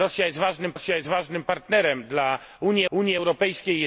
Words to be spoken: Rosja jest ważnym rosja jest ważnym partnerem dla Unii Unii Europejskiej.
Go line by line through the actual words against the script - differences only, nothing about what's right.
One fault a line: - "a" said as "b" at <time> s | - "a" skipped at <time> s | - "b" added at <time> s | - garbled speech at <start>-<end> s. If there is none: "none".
none